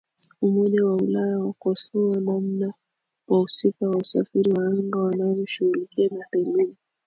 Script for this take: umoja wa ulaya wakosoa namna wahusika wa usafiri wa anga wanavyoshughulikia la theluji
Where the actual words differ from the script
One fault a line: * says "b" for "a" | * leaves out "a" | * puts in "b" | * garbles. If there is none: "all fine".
all fine